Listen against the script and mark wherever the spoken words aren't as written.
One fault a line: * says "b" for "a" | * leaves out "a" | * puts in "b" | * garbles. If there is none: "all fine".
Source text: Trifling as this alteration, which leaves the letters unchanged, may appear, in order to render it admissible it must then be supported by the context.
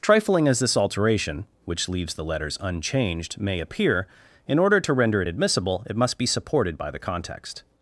* leaves out "then"